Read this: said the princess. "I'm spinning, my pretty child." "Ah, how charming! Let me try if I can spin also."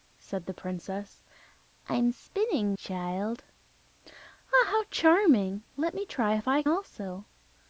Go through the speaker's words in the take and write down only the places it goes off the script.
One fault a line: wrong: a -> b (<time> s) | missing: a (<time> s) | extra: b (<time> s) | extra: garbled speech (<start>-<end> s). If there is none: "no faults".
missing: my pretty (2.8 s)
missing: can spin (6.6 s)